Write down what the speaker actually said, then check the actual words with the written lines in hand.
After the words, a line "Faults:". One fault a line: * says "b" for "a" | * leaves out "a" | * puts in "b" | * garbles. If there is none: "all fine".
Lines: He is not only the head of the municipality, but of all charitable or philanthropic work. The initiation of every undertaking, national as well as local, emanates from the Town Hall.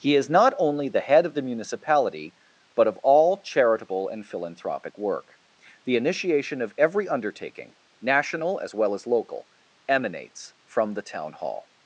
He is not only the head of the municipality, but of all charitable and philanthropic work. The initiation of every undertaking, national as well as local, emanates from the Town Hall.
Faults:
* says "and" for "or"